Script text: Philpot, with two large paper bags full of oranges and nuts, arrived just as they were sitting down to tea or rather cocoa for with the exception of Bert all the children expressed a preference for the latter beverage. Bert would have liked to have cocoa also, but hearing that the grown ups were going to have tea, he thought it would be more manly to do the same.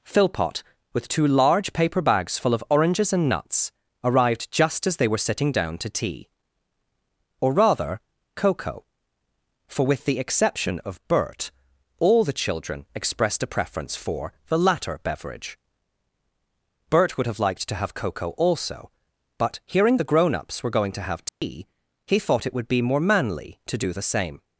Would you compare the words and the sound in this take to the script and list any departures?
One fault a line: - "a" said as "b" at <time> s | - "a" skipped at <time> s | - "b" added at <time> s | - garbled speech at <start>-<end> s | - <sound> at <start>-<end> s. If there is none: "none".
- "that" skipped at 20.0 s
- dropout at 21.3-21.4 s